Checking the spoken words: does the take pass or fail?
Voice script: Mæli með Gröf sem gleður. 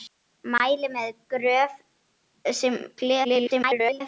fail